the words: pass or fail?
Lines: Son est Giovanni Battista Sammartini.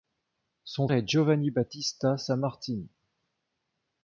pass